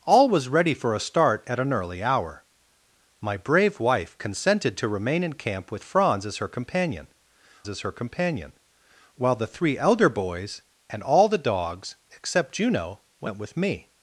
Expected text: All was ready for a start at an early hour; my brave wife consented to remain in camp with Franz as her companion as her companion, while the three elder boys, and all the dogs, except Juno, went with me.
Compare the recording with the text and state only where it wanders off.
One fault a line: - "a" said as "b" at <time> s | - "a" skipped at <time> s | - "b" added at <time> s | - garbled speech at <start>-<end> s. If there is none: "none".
none